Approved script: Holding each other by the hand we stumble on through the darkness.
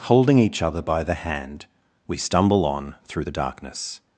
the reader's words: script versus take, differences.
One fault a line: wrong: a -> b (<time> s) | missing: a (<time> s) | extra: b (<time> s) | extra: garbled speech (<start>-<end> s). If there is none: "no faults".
no faults